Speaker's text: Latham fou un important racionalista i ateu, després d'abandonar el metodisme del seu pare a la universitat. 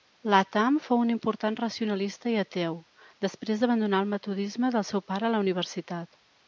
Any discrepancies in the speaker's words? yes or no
no